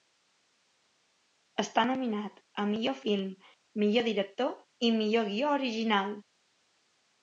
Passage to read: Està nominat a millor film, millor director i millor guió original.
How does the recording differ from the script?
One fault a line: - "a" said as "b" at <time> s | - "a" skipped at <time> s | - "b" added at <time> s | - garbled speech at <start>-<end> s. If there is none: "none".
none